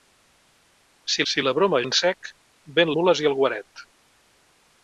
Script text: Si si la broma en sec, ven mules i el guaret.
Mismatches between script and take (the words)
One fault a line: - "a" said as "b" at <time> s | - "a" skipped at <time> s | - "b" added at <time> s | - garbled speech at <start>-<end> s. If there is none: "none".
none